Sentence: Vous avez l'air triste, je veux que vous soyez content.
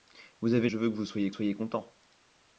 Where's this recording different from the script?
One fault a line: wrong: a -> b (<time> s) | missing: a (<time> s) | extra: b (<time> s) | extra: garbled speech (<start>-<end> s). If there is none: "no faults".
missing: l'air triste (0.7 s)
extra: soyez (1.3 s)